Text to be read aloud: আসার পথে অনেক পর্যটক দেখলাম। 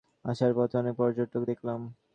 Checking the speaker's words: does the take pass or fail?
pass